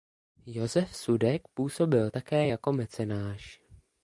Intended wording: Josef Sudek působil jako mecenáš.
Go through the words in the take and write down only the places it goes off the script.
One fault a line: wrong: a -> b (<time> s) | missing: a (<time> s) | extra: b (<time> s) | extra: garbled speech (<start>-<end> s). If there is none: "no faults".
extra: také (2.1 s)